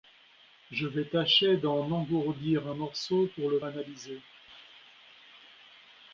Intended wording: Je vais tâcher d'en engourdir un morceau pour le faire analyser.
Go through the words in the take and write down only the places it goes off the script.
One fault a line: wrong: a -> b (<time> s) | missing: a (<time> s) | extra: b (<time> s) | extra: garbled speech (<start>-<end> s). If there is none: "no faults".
missing: faire (3.6 s)